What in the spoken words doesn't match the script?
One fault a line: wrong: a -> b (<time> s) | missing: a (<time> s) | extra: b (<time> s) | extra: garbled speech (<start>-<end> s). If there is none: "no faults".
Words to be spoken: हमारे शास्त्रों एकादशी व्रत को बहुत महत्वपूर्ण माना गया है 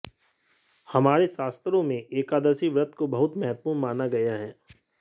extra: में (1.8 s)